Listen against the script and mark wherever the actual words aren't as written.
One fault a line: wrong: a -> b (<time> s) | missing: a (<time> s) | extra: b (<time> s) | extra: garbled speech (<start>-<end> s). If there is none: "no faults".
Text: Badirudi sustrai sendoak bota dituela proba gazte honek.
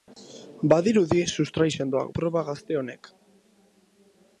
missing: bota dituela (2.1 s)